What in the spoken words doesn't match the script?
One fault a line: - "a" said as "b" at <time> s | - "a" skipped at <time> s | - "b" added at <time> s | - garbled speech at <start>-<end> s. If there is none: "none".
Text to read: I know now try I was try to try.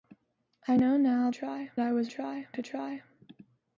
none